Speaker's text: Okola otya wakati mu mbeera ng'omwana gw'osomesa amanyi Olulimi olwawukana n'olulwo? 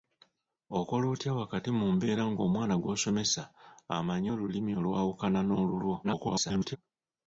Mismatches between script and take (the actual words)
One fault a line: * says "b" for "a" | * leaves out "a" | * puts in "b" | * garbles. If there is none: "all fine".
* garbles